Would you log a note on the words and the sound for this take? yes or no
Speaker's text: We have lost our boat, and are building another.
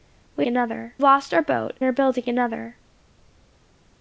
yes